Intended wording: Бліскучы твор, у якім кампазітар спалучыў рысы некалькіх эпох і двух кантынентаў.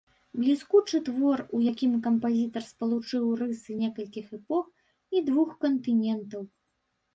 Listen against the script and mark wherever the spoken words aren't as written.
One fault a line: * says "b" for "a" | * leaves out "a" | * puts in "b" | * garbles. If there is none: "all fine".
all fine